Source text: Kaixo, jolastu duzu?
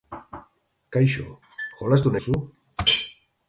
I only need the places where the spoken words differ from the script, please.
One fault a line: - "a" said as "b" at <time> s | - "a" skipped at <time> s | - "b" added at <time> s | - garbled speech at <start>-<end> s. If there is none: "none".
none